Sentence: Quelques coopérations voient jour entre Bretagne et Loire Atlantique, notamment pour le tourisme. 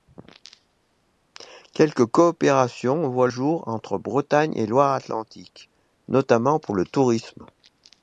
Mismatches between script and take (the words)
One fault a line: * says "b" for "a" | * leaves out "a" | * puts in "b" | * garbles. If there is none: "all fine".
all fine